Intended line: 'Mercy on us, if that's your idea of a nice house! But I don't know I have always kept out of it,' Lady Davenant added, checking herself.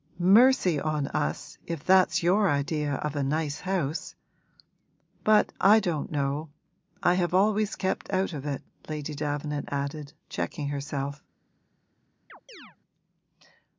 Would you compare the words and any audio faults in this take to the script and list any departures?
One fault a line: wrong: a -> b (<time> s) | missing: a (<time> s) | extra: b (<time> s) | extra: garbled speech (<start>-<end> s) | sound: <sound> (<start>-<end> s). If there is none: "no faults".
sound: chirp (12.3-12.8 s)